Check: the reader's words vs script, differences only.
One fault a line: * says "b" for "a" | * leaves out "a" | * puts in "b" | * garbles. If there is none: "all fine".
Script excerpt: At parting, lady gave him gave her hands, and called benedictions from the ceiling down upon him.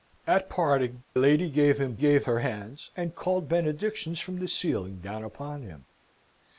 all fine